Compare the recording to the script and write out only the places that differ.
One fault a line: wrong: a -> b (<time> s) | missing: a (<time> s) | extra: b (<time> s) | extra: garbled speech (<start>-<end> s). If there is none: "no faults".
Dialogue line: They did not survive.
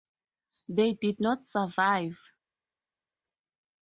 no faults